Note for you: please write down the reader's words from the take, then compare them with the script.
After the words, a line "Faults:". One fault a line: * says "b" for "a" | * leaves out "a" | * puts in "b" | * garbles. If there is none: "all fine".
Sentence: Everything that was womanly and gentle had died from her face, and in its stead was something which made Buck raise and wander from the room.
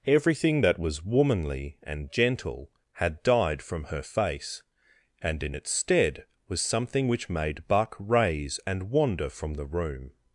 Everything that was womanly and gentle had died from her face, and in its stead was something which made Buck raise and wander from the room.
Faults:
all fine